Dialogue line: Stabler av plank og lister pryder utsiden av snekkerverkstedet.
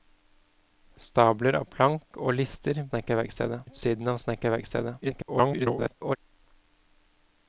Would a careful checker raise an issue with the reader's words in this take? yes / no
yes